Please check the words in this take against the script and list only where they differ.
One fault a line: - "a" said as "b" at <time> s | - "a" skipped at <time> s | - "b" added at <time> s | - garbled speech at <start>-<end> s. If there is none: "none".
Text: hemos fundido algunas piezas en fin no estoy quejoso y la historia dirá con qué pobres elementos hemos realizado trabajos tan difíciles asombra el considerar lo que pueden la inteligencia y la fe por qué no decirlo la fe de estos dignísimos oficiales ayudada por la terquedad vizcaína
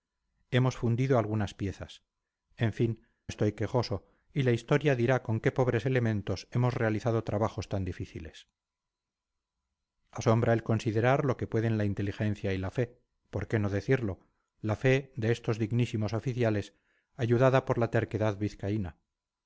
- "no" skipped at 3.0 s